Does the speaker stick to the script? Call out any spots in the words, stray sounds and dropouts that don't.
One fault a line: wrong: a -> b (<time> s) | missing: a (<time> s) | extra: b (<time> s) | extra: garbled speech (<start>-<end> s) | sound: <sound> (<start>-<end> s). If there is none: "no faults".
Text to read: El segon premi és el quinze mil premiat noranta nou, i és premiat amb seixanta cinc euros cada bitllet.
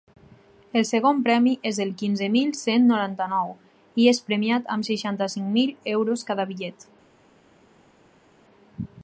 wrong: premiat -> cent (2.6 s)
extra: mil (5.6 s)